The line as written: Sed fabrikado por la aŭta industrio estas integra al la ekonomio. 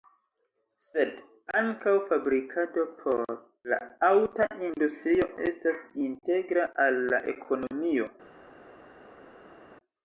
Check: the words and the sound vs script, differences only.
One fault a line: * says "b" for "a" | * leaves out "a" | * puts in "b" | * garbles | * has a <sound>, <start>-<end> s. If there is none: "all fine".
* puts in "ankaŭ"